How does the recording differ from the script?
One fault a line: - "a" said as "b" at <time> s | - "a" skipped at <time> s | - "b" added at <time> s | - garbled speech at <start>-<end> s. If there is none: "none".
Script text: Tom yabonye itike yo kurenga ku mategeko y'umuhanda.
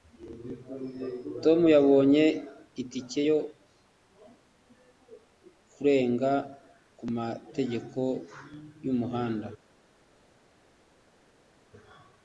none